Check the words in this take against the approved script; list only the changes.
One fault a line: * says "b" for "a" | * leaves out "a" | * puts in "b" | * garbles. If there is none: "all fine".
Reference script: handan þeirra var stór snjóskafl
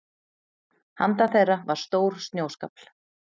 all fine